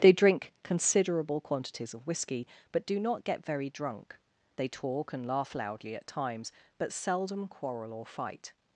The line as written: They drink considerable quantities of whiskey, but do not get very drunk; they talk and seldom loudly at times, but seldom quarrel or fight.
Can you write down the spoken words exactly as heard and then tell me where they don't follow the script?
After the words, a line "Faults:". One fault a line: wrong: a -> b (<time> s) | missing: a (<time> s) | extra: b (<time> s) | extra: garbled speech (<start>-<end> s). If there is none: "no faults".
They drink considerable quantities of whiskey, but do not get very drunk; they talk and laugh loudly at times, but seldom quarrel or fight.
Faults:
wrong: seldom -> laugh (5.3 s)